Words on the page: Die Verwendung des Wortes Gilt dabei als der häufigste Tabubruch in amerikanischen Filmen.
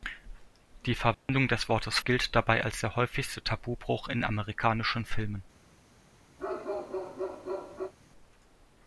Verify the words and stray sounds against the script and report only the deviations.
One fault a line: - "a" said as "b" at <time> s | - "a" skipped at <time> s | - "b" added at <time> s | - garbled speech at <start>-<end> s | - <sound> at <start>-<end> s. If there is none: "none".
- dropout at 1.1-1.3 s
- bark at 6.4-7.9 s